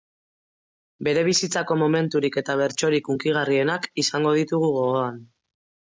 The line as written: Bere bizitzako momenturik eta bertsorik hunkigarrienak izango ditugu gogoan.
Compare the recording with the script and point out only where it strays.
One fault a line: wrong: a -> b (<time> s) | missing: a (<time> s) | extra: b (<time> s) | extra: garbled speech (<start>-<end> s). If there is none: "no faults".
no faults